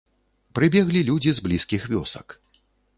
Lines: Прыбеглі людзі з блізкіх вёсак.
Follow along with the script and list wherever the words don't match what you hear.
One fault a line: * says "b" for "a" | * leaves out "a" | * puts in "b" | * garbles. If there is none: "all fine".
all fine